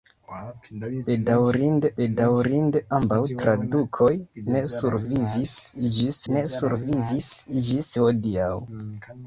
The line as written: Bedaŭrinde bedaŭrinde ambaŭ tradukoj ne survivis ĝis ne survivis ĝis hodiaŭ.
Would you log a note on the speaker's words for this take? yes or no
no